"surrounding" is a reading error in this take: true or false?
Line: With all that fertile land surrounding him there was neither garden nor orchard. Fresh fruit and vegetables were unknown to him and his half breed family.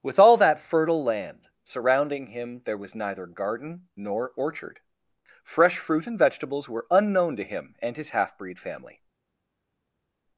false